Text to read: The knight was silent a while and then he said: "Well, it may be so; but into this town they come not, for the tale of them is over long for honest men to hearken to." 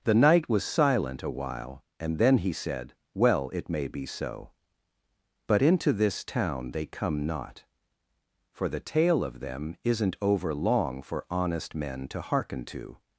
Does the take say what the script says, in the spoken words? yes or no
no